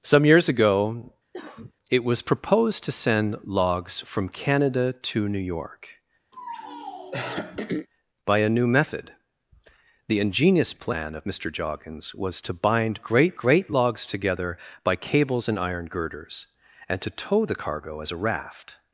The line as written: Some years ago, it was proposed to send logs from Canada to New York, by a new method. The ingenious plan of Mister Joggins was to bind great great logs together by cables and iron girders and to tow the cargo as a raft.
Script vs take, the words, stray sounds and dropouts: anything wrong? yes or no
yes